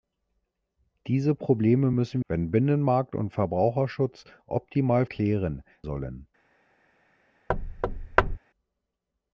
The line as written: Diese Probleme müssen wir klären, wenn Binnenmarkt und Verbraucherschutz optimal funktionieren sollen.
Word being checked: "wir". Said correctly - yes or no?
no